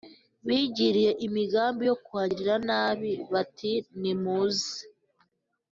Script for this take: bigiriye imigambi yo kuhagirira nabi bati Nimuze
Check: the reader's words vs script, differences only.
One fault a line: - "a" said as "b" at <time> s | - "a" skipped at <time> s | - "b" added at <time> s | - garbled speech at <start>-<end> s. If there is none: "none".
none